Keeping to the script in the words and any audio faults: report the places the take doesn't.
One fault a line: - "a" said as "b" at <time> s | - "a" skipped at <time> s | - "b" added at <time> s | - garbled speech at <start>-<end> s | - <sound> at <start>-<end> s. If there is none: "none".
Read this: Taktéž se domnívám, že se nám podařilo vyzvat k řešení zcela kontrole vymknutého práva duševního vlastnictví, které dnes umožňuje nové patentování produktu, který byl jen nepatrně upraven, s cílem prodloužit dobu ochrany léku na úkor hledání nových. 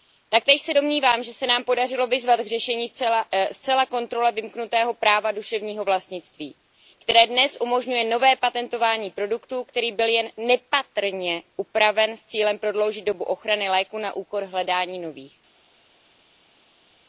none